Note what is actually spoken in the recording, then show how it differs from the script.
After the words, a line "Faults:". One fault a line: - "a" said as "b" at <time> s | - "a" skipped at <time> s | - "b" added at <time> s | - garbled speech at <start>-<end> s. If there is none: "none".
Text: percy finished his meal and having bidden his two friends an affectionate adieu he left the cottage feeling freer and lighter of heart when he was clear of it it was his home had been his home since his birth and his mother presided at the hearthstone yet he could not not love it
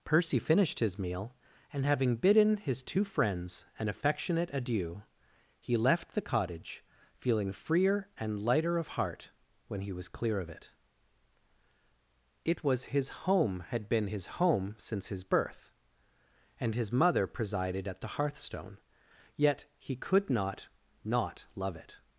percy finished his meal and having bidden his two friends an affectionate adieu he left the cottage feeling freer and lighter of heart when he was clear of it it was his home had been his home since his birth and his mother presided at the hearthstone yet he could not not love it
Faults:
none